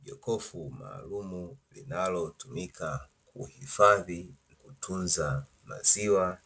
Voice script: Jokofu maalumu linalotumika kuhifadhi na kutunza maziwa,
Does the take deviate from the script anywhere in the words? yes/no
yes